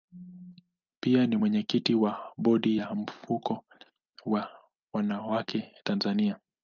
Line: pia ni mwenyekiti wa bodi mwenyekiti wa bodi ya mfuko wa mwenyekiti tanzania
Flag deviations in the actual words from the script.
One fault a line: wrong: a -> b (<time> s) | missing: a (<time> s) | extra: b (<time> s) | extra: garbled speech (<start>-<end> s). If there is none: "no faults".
missing: mwenyekiti wa bodi (2.8 s)
wrong: mwenyekiti -> wanawake (4.9 s)